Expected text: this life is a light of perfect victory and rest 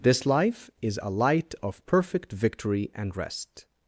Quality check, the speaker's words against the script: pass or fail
pass